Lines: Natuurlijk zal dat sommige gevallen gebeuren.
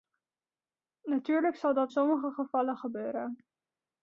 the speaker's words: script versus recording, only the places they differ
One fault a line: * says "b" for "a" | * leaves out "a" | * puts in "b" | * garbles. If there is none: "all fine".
all fine